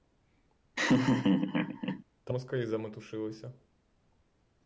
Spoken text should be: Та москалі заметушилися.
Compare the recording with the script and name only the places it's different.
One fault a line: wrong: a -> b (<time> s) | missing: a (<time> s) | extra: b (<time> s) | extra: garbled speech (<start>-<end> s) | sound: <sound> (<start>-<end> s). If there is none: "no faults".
sound: laugh (0.8-2.0 s)